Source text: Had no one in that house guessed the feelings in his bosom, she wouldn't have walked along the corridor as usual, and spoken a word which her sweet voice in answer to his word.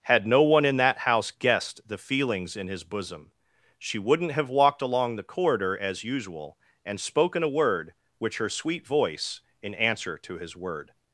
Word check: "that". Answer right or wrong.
right